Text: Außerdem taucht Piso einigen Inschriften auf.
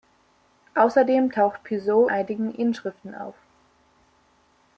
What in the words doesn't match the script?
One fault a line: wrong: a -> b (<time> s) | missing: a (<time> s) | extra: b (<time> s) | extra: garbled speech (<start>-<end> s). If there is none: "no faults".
no faults